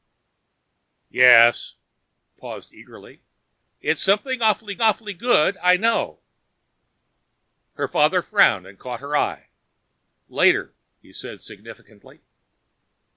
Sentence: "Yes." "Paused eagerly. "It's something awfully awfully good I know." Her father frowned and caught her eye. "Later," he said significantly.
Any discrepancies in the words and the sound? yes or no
no